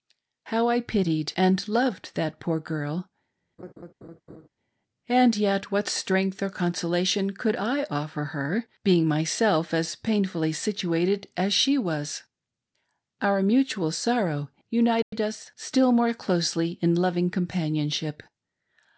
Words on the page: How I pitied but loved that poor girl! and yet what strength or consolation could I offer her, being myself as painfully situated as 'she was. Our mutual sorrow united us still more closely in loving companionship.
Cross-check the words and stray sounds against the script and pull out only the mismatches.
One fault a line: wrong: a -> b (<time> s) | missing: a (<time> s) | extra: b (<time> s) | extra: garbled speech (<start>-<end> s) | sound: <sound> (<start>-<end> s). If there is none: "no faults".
wrong: but -> and (1.4 s)
sound: laugh (3.6-4.5 s)
sound: dropout (15.0-15.1 s)